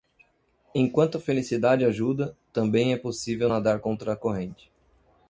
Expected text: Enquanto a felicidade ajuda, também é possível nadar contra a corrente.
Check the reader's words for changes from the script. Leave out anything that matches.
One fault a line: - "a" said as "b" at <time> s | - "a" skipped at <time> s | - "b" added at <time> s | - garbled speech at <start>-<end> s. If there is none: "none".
none